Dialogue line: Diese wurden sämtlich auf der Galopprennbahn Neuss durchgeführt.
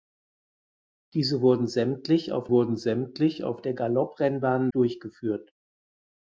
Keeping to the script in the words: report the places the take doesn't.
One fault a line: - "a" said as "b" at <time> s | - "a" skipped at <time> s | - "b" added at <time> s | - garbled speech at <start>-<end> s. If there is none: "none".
- "wurden sämtlich auf" added at 2.5 s
- "Neuss" skipped at 4.7 s